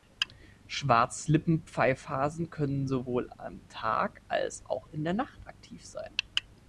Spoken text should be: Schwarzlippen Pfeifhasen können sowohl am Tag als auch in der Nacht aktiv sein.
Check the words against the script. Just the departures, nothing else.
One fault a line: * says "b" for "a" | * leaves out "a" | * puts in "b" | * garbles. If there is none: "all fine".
all fine